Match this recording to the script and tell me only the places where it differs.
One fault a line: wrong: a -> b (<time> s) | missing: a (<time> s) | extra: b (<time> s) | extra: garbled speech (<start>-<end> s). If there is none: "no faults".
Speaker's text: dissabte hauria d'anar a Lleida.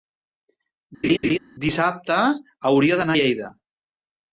no faults